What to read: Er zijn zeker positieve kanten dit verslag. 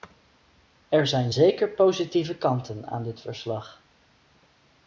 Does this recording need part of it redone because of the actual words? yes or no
yes